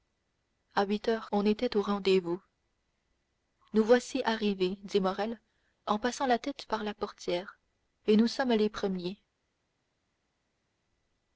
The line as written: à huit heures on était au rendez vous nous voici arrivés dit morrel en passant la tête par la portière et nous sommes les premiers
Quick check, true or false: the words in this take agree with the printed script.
true